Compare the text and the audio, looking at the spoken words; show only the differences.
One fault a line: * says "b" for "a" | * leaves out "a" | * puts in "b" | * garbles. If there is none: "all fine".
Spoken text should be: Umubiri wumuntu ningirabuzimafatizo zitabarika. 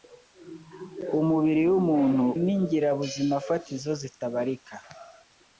all fine